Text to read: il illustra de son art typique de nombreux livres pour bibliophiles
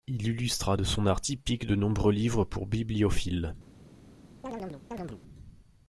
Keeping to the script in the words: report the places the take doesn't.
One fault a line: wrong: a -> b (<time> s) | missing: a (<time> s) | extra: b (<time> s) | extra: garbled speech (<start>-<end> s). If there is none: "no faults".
no faults